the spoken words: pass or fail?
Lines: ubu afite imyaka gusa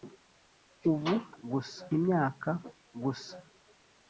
fail